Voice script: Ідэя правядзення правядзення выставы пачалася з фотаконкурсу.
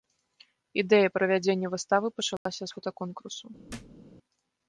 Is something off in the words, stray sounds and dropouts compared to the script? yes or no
yes